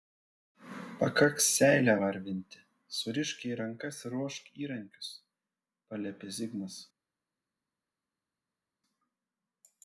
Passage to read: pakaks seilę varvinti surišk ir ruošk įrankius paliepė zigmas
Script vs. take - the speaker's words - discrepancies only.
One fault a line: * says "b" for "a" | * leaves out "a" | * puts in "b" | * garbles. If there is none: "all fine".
* puts in "jai rankas"